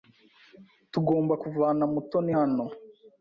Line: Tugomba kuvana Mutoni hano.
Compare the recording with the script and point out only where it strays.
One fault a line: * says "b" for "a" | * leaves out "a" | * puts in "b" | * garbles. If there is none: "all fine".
all fine